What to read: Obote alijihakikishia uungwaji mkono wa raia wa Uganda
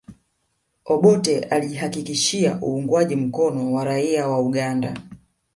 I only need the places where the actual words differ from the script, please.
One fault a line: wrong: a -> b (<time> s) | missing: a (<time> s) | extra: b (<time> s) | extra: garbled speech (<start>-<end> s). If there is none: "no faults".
no faults